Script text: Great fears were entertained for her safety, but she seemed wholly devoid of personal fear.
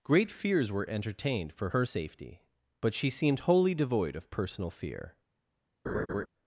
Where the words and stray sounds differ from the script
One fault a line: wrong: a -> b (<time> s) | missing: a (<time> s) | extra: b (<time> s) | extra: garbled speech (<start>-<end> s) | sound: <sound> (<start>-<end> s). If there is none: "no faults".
sound: laugh (5.9-6.3 s)